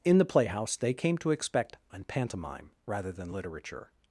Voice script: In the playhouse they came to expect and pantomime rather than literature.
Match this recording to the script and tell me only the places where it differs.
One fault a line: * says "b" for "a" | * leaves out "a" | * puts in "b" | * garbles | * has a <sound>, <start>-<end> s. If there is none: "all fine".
all fine